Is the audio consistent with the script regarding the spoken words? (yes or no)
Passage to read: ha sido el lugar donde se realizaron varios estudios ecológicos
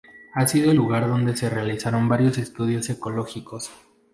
yes